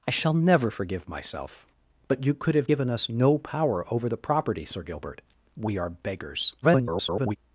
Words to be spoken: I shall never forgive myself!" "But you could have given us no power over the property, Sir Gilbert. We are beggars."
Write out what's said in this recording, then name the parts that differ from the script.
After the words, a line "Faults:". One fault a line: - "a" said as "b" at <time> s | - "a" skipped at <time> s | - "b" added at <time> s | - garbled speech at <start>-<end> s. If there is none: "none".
I shall never forgive myself!" "But you could have given us no power over the property, Sir Gilbert. We are beggars." [garbled]
Faults:
- garbled speech at 6.6-7.4 s